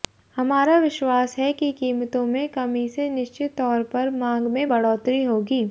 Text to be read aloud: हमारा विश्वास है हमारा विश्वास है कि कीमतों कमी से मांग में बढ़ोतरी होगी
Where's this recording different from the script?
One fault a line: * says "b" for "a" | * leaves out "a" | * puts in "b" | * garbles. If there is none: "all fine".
* leaves out "हमारा विश्वास है"
* puts in "में"
* puts in "निश्चित तौर पर"